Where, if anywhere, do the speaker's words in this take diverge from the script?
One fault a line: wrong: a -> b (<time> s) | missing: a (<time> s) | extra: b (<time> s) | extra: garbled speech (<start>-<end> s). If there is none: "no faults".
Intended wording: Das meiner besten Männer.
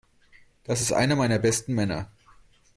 extra: ist einer (0.8 s)